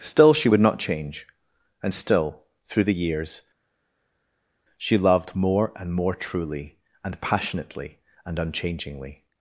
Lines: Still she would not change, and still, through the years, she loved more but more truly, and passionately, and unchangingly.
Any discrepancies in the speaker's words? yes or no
yes